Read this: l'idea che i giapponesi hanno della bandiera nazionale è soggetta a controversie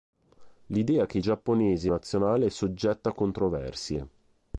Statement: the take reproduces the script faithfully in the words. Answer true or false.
false